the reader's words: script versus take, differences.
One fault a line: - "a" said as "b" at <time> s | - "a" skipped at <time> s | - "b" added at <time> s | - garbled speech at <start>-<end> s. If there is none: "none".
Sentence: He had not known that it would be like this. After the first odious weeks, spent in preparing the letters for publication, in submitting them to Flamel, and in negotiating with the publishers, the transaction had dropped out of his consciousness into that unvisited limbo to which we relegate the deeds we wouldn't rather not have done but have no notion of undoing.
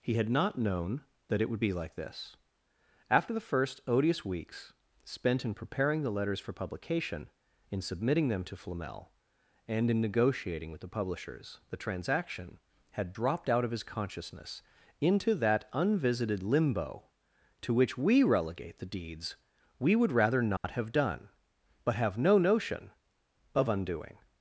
- "wouldn't" said as "would" at 19.9 s